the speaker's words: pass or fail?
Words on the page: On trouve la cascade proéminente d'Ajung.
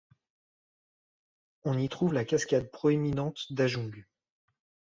fail